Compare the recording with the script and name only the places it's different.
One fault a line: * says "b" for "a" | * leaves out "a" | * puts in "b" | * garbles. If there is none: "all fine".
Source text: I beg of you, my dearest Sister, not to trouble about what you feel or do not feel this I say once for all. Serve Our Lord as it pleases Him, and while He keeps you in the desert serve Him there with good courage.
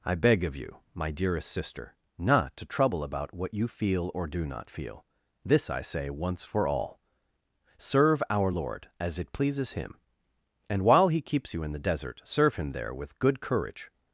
all fine